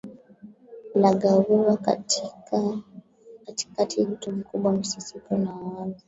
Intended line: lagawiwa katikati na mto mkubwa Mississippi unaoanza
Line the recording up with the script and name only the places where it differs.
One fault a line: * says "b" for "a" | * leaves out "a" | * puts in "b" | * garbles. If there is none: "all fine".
* leaves out "na"